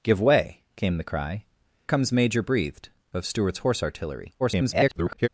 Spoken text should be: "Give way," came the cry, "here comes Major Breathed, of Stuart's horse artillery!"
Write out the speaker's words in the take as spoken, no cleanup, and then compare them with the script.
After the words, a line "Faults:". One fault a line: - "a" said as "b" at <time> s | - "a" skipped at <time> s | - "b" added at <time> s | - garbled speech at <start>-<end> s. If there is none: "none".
"Give way," came the cry, "comes Major Breathed, of Stuart's horse artillery!" [garbled]
Faults:
- "here" skipped at 1.4 s
- garbled speech at 4.4-5.3 s